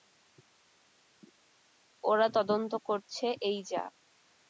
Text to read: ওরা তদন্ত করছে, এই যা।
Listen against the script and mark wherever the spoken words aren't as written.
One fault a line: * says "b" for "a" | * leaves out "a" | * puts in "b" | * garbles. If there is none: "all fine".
all fine